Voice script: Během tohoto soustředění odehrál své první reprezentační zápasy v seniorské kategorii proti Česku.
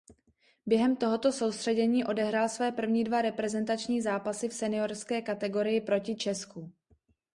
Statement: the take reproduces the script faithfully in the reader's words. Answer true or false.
false